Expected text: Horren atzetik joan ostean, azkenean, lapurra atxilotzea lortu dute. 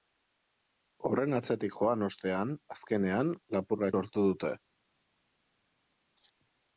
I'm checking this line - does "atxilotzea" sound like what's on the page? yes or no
no